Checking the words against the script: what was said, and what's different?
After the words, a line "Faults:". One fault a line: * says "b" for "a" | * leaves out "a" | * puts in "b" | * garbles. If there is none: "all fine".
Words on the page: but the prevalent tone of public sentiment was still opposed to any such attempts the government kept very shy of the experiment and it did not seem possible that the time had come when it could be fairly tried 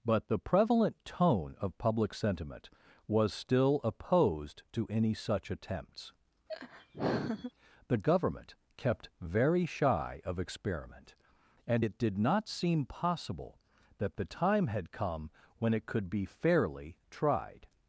but the prevalent tone of public sentiment was still opposed to any such attempts the government kept very shy of experiment and it did not seem possible that the time had come when it could be fairly tried
Faults:
* leaves out "the"